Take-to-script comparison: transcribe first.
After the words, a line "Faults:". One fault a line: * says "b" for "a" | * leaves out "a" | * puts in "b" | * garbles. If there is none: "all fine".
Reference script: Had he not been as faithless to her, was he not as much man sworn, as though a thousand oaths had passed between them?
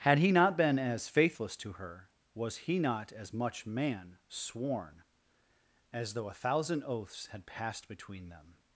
Had he not been as faithless to her, was he not as much man sworn, as though a thousand oaths had passed between them?
Faults:
all fine